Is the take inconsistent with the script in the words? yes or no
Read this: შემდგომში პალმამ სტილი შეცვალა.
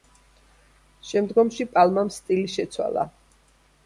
no